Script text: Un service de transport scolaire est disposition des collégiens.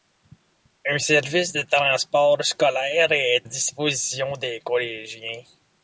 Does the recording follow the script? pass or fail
pass